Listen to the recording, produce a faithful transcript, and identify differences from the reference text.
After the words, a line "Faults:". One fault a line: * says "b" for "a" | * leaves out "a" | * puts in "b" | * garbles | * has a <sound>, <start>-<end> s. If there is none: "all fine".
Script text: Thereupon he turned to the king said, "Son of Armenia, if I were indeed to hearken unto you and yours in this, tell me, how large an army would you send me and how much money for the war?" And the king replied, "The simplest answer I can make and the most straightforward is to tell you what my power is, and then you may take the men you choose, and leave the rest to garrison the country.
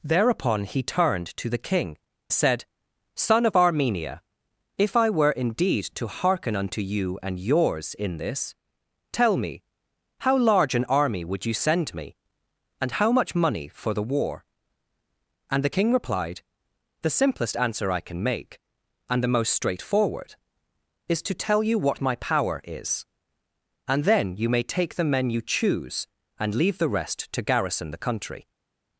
Thereupon he turned to the king said, "Son of Armenia, if I were indeed to hearken unto you and yours in this, tell me, how large an army would you send me and how much money for the war?" And the king replied, "The simplest answer I can make and the most straightforward is to tell you what my power is, and then you may take the men you choose, and leave the rest to garrison the country.
Faults:
all fine